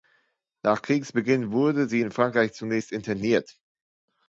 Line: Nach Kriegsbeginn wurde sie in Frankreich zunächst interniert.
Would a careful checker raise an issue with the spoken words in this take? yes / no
no